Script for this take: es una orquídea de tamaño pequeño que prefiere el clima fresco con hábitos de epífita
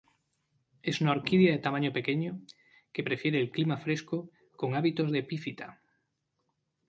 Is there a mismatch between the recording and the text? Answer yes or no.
no